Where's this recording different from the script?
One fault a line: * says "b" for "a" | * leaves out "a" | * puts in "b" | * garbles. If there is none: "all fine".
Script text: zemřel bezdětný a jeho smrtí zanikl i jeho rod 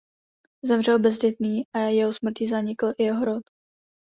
all fine